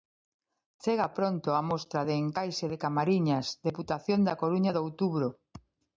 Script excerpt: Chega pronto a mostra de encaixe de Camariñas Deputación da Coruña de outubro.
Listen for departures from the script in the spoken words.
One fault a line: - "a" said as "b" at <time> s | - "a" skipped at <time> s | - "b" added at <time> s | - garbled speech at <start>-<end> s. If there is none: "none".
none